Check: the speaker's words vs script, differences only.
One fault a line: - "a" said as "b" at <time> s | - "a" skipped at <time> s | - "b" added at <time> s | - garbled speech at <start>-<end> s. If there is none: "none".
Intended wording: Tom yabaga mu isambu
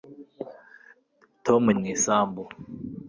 - "yabaga" skipped at 1.6 s